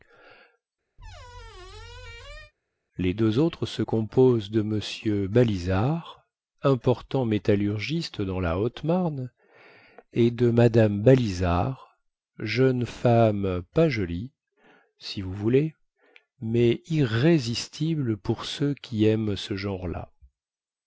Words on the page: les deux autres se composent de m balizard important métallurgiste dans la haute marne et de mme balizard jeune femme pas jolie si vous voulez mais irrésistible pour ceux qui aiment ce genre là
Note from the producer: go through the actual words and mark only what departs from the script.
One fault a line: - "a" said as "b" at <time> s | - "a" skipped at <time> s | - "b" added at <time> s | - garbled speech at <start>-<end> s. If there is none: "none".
none